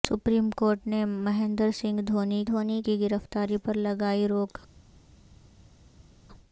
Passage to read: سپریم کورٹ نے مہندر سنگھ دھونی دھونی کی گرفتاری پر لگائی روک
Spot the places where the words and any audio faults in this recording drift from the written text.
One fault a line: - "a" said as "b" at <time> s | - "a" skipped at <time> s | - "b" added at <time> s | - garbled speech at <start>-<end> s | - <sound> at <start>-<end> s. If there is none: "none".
none